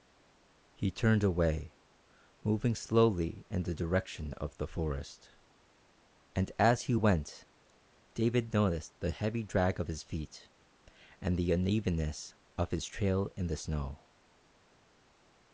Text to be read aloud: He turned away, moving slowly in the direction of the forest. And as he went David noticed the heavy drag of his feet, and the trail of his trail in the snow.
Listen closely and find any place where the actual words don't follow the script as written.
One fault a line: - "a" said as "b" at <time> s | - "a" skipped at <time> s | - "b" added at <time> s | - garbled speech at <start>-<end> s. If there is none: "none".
- "trail" said as "unevenness" at 11.5 s